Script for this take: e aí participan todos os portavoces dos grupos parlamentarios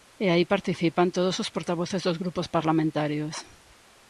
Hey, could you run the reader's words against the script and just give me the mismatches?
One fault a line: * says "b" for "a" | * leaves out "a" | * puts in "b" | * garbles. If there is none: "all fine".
all fine